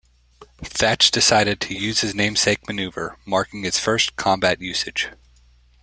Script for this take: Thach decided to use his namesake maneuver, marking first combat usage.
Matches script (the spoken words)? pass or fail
fail